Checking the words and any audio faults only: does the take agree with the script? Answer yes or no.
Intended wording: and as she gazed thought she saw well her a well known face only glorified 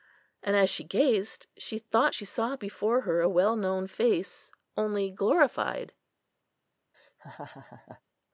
no